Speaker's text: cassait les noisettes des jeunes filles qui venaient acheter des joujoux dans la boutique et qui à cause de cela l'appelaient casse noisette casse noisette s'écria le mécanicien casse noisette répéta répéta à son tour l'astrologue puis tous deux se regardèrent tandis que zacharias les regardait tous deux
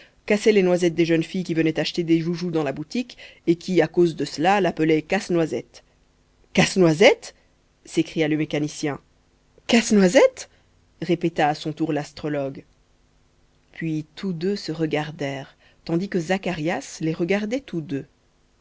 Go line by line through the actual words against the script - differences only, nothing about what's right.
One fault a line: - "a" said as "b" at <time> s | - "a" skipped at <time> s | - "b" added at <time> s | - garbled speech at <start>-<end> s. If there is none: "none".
- "répéta" skipped at 11.5 s